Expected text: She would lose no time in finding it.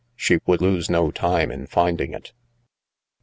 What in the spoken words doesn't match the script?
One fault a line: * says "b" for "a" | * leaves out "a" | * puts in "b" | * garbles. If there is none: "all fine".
all fine